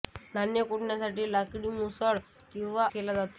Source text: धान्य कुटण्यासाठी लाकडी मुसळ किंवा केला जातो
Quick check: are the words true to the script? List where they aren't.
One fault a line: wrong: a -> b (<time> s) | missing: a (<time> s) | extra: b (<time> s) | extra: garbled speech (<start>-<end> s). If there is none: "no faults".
no faults